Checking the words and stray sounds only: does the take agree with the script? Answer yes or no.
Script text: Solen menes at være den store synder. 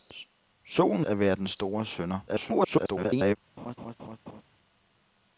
no